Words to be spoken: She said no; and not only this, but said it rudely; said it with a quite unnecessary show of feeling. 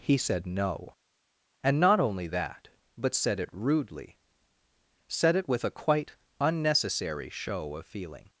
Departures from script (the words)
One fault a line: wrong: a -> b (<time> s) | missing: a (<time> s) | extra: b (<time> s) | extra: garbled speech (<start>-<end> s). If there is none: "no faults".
wrong: She -> He (0.0 s)
wrong: this -> that (2.3 s)